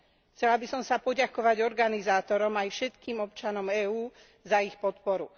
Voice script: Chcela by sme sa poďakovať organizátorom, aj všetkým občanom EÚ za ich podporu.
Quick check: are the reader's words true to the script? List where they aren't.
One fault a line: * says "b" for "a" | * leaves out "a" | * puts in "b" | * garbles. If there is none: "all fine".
* says "som" for "sme"